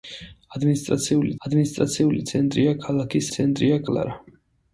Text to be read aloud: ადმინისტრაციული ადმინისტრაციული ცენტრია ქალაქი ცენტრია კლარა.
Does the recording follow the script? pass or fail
pass